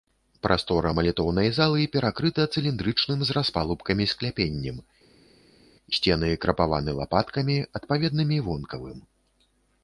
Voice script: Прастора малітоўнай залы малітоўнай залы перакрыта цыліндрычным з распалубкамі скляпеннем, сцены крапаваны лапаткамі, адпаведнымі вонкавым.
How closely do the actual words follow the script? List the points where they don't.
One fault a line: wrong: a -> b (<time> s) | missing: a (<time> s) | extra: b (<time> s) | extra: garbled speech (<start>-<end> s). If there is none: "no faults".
missing: малітоўнай залы (1.8 s)